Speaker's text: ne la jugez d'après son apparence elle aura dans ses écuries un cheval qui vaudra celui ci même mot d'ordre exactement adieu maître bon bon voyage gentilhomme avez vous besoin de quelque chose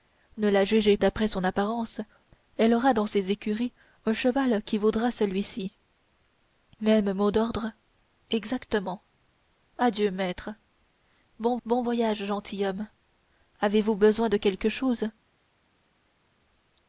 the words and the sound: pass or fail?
pass